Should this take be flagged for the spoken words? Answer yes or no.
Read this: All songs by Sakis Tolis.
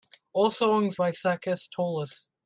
no